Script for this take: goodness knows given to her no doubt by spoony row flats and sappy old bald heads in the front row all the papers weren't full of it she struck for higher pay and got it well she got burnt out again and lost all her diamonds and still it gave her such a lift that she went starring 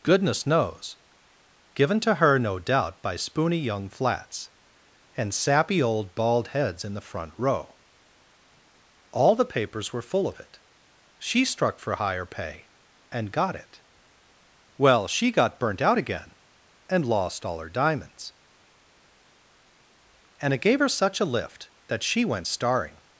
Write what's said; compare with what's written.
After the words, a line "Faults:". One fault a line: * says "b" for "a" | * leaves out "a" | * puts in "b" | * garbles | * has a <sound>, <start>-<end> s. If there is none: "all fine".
goodness knows given to her no doubt by spoony young flats and sappy old bald heads in the front row all the papers were full of it she struck for higher pay and got it well she got burnt out again and lost all her diamonds and it gave her such a lift that she went starring
Faults:
* says "young" for "row"
* says "were" for "weren't"
* leaves out "still"